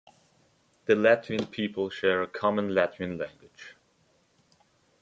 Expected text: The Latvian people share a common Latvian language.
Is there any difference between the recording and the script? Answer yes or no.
no